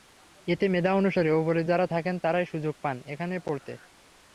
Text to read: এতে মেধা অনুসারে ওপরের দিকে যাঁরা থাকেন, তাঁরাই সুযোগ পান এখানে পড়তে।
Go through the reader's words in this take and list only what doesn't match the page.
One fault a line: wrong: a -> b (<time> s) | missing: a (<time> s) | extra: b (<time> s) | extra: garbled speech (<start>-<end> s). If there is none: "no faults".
missing: দিকে (1.6 s)